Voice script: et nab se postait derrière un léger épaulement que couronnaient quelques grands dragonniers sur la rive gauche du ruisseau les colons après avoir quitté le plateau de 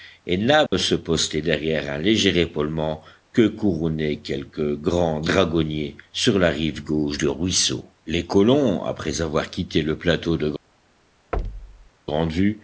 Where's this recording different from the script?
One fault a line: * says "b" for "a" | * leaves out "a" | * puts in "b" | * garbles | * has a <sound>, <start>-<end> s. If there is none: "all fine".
* has a dropout, 0.7-0.7 s
* has a thud, 11.3-11.9 s